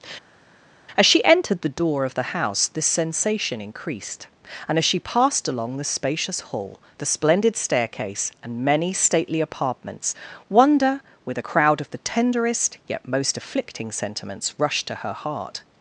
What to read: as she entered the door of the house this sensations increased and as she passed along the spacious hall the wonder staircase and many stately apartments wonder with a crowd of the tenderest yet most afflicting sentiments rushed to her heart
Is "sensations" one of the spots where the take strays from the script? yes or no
yes